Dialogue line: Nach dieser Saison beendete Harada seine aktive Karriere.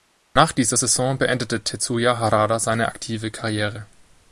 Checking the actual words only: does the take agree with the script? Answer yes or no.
no